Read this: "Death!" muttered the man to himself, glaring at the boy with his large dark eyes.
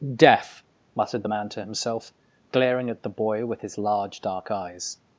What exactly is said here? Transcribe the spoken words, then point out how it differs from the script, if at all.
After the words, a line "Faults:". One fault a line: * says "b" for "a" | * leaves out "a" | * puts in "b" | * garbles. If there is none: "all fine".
"Death!" muttered the man to himself, glaring at the boy with his large dark eyes.
Faults:
all fine